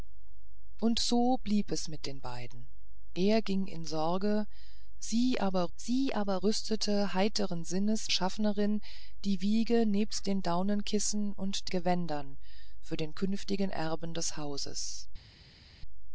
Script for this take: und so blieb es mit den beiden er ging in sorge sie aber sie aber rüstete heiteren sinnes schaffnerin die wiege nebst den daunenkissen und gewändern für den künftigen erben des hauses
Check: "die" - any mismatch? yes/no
no